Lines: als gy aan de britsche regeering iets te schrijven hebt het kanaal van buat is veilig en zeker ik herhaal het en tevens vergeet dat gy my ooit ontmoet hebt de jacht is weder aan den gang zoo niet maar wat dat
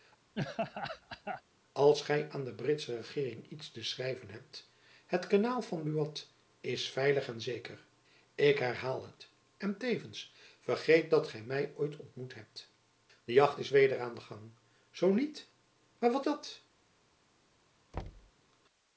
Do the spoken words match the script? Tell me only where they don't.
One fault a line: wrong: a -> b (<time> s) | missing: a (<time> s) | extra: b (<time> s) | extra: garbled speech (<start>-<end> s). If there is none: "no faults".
no faults